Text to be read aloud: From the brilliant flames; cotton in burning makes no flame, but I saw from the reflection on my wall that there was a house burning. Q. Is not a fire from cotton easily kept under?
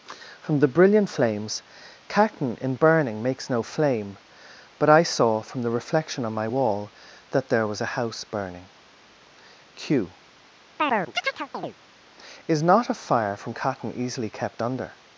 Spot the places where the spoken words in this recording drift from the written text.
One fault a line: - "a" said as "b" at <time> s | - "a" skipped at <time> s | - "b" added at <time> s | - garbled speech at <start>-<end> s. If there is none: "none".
none